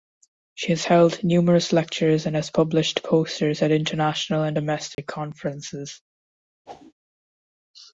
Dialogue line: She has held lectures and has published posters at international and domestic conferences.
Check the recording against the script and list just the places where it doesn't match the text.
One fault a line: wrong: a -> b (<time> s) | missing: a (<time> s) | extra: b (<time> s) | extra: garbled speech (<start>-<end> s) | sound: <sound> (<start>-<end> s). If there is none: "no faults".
extra: numerous (1.2 s)
sound: dropout (4.9-5.0 s)
sound: whoosh (6.7-6.9 s)